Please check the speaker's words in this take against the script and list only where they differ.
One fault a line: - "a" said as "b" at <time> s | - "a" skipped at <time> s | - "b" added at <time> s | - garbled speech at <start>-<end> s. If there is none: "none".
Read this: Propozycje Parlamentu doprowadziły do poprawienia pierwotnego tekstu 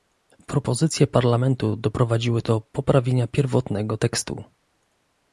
none